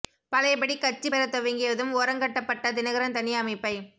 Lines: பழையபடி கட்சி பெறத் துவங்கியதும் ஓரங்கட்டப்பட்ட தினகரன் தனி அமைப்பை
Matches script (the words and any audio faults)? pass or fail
pass